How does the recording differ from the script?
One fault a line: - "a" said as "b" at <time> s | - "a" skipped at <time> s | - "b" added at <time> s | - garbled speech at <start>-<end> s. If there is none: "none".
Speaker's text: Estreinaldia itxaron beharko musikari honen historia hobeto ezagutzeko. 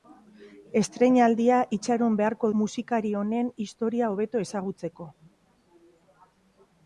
none